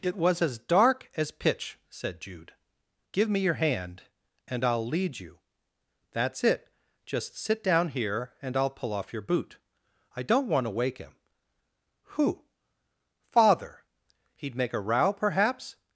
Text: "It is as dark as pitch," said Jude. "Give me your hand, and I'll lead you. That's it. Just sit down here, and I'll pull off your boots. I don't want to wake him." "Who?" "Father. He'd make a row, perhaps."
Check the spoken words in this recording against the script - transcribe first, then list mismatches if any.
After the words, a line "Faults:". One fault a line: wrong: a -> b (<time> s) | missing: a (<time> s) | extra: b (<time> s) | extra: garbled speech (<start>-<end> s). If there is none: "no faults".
"It was as dark as pitch," said Jude. "Give me your hand, and I'll lead you. That's it. Just sit down here, and I'll pull off your boot. I don't want to wake him." "Who?" "Father. He'd make a row, perhaps."
Faults:
wrong: is -> was (0.1 s)
wrong: boots -> boot (9.2 s)